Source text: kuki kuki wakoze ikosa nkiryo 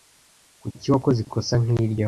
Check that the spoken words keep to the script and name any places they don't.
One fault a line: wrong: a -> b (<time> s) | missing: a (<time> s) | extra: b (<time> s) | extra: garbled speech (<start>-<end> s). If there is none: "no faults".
missing: kuki (0.9 s)